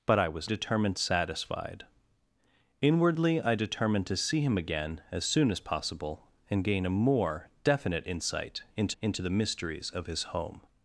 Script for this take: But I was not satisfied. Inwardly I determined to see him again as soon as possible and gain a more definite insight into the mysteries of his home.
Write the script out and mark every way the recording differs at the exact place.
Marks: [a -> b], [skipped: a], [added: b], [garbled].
But I was [not -> determined] satisfied. Inwardly I determined to see him again as soon as possible and gain a more definite insight into [added: into] the mysteries of his home.